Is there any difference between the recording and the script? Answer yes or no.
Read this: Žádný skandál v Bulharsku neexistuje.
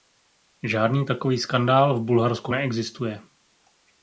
yes